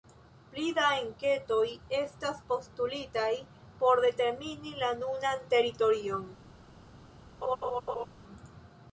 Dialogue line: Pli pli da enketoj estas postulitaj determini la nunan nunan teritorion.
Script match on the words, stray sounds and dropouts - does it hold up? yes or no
no